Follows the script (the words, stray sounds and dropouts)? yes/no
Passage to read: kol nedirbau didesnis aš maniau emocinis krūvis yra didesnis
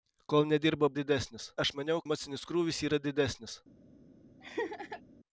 no